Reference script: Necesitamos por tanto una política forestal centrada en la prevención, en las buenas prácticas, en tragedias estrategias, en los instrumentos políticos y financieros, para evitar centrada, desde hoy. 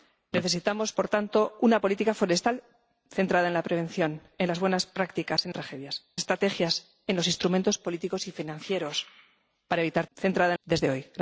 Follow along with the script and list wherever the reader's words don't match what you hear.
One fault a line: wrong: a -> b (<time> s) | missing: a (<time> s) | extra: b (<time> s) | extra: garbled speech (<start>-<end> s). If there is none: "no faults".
no faults